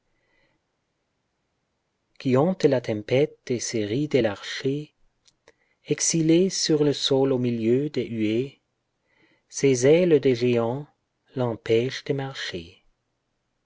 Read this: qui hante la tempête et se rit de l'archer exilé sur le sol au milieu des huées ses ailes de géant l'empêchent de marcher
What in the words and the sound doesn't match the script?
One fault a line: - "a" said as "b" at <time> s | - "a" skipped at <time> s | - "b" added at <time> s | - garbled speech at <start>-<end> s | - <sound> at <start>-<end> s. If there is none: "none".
none